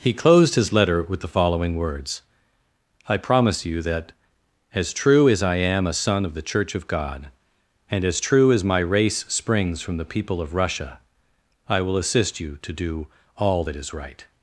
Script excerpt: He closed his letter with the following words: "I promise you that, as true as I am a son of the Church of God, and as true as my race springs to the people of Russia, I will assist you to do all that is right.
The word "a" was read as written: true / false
true